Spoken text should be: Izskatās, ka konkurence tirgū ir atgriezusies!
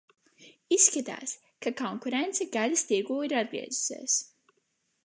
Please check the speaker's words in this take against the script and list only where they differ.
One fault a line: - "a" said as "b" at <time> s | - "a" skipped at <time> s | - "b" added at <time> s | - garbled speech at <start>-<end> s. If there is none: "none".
- "gaļas" added at 2.6 s